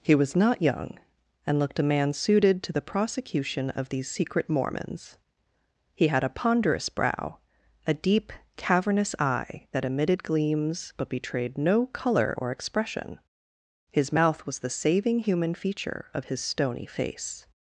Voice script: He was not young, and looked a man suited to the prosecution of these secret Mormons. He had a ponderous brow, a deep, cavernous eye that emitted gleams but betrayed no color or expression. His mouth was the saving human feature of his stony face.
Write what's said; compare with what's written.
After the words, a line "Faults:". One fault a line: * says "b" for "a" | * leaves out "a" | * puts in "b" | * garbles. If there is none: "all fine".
He was not young, and looked a man suited to the prosecution of these secret Mormons. He had a ponderous brow, a deep, cavernous eye that emitted gleams but betrayed no color or expression. His mouth was the saving human feature of his stony face.
Faults:
all fine